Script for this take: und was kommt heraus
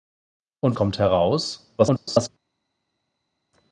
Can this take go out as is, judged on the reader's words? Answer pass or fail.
fail